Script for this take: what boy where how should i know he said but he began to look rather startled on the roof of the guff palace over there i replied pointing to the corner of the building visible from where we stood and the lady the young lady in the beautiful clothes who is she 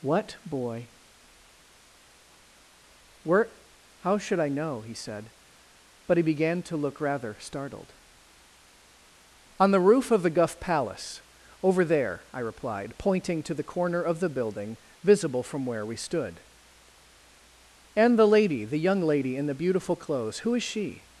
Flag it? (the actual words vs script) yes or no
no